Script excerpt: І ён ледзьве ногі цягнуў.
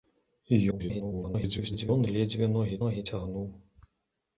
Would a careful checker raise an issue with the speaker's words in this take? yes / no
yes